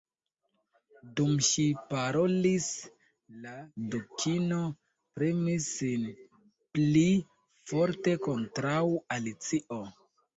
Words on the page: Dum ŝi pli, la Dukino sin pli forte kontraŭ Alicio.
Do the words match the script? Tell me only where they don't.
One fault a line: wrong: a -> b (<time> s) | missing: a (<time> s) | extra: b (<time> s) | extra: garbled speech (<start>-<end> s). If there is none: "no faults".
wrong: pli -> parolis (1.9 s)
extra: premis (5.2 s)